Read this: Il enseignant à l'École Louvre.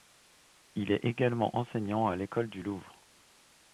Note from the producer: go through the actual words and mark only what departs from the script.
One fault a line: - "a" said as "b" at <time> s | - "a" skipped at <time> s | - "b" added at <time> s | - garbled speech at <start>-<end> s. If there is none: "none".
- "est également" added at 0.9 s
- "du" added at 2.5 s